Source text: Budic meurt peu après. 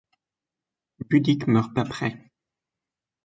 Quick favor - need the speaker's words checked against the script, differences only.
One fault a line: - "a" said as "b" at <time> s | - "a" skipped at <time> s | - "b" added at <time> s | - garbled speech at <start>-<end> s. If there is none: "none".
- "peu" skipped at 1.8 s